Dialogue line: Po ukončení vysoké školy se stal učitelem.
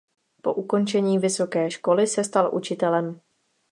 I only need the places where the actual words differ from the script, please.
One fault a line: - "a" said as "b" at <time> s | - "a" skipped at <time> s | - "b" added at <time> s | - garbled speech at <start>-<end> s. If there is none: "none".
none